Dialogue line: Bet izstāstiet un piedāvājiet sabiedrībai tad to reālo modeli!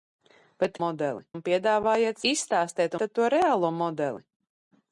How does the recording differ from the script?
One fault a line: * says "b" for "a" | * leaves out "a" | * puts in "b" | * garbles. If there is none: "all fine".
* says "modeli" for "izstāstiet"
* says "izstāstiet" for "sabiedrībai"